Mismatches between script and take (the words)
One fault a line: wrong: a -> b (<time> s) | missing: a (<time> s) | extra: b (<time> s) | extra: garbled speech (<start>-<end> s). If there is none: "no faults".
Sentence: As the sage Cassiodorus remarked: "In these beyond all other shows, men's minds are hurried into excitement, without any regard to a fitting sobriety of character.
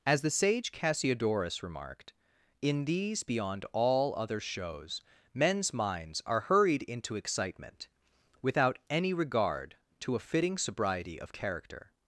no faults